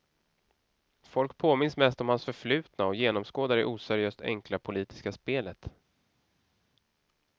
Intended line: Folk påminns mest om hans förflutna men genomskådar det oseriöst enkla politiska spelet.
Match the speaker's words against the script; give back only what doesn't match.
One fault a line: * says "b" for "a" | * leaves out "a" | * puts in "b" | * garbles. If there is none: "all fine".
* says "och" for "men"